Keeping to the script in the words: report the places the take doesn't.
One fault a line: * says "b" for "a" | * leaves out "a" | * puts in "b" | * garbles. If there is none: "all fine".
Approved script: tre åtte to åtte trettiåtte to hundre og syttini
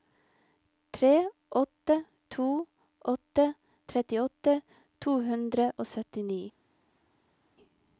all fine